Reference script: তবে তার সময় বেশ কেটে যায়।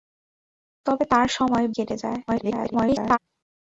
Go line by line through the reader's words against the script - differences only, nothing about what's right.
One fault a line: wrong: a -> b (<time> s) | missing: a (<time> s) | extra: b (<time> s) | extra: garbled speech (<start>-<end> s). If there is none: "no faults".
missing: বেশ (1.6 s)
extra: garbled speech (2.3-3.2 s)